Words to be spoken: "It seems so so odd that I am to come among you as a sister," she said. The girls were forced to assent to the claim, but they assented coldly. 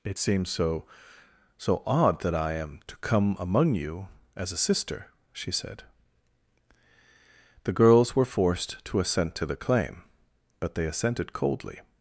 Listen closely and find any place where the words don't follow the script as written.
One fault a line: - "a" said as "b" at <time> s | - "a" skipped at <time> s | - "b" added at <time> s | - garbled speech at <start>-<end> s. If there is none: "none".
none